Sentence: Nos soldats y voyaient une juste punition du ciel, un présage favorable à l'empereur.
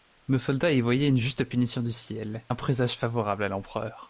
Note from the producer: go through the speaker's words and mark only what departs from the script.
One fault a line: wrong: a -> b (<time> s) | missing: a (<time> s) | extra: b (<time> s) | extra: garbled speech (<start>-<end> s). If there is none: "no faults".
no faults